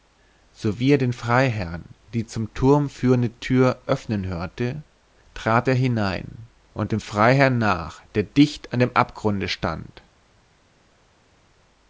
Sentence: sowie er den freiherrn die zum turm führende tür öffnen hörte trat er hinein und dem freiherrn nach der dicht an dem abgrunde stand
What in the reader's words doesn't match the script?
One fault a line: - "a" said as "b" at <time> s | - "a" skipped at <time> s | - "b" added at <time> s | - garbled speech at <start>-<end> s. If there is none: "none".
none